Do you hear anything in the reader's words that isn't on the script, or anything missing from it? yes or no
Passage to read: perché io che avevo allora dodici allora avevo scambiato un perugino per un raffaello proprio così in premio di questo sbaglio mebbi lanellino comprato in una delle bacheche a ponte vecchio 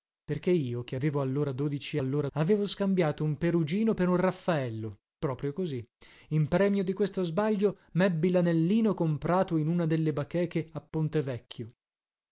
no